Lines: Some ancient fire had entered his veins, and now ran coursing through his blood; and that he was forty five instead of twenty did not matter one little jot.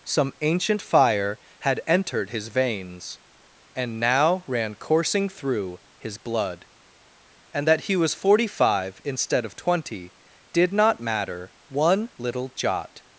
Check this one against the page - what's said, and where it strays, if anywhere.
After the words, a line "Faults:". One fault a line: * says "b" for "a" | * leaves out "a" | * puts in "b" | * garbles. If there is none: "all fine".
Some ancient fire had entered his veins, and now ran coursing through his blood; and that he was forty five instead of twenty did not matter one little jot.
Faults:
all fine